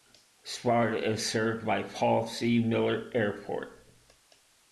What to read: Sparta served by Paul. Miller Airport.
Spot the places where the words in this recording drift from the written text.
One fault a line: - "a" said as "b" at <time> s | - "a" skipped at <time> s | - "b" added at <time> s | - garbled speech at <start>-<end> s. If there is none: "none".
- "is" added at 1.0 s
- "C" added at 2.3 s